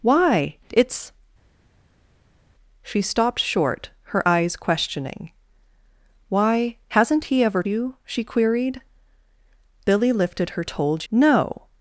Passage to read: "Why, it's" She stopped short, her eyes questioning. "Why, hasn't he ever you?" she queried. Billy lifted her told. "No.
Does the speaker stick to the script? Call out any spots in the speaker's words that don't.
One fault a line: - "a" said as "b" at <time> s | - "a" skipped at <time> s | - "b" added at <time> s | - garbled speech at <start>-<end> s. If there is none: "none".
none